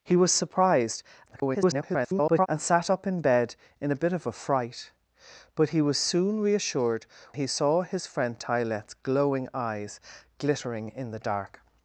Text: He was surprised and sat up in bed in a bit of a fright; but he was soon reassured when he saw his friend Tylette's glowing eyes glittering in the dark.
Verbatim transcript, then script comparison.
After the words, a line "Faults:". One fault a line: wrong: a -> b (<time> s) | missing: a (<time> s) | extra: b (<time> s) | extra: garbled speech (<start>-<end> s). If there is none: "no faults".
He was surprised [garbled] and sat up in bed in a bit of a fright; but he was soon reassured he saw his friend Tylette's glowing eyes glittering in the dark.
Faults:
extra: garbled speech (1.3-2.5 s)
missing: when (7.1 s)